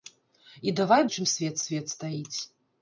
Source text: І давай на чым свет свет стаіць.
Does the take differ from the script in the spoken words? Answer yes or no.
no